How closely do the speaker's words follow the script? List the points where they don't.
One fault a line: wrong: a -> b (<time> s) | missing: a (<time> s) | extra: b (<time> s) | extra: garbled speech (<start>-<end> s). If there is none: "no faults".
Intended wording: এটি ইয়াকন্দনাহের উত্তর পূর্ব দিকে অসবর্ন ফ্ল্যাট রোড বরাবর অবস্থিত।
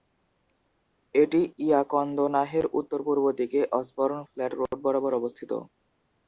no faults